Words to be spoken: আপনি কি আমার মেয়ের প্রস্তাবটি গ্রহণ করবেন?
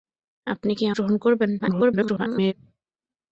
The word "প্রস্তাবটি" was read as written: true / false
false